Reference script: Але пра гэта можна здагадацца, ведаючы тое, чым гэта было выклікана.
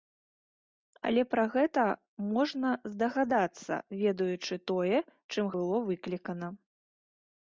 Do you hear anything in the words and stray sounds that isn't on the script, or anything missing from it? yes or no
yes